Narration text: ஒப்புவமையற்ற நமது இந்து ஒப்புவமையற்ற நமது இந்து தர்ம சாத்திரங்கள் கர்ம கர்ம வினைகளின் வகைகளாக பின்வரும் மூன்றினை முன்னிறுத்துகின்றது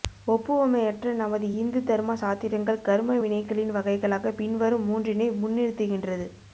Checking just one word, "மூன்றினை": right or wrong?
right